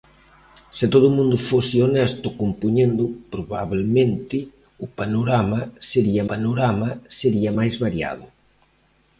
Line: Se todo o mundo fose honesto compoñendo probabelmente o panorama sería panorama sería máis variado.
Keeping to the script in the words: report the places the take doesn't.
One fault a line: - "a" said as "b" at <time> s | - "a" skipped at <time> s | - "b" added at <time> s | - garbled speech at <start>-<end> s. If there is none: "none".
none